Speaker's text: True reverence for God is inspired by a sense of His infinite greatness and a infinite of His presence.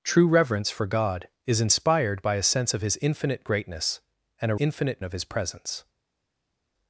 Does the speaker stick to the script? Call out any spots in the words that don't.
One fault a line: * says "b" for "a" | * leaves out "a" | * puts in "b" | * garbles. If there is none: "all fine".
all fine